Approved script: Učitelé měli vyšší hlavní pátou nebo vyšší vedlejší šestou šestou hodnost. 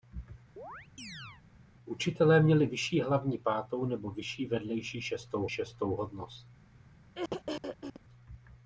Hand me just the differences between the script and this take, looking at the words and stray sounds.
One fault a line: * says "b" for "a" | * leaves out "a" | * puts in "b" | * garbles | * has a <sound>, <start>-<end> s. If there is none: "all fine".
* has a chirp, 0.6-1.4 s
* has a throat clearing, 7.1-8.0 s